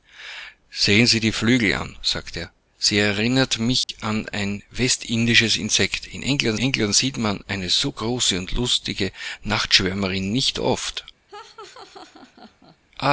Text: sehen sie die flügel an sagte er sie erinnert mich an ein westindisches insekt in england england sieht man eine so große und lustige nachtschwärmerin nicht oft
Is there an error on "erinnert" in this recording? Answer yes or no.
no